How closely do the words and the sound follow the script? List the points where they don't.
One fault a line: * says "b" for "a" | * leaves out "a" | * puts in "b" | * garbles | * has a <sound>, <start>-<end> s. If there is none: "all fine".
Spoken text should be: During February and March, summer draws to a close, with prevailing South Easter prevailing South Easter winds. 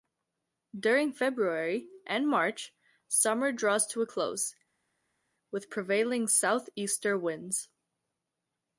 * leaves out "prevailing South Easter"